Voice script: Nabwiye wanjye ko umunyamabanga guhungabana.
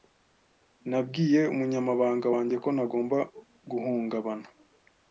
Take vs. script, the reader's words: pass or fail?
fail